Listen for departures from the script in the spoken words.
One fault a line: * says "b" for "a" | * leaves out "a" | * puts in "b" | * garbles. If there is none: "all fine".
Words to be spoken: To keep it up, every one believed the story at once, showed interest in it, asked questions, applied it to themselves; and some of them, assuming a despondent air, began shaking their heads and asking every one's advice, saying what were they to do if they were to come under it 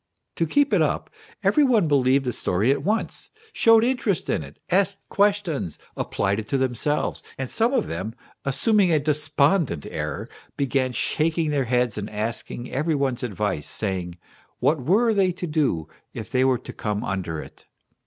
all fine